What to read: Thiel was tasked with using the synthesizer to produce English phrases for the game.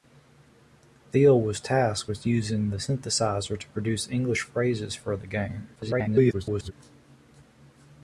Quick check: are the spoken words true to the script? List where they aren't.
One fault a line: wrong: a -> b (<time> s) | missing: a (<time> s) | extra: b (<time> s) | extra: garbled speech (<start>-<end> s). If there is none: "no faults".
extra: garbled speech (5.8-6.7 s)